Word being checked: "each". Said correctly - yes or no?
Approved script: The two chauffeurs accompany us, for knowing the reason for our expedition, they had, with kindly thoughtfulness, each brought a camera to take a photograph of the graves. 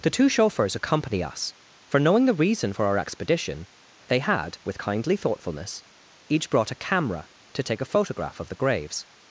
yes